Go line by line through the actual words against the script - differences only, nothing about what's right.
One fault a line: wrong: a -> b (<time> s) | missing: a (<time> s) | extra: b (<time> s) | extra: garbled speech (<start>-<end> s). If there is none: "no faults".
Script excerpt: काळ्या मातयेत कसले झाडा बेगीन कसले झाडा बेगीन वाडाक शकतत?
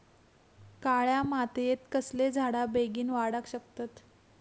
missing: कसले झाडा बेगीन (3.1 s)